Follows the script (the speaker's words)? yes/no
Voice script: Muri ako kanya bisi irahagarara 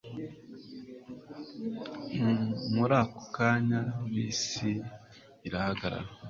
yes